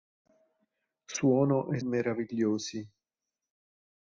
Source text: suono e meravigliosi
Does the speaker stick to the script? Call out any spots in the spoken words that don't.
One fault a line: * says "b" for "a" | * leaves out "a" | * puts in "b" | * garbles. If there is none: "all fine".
all fine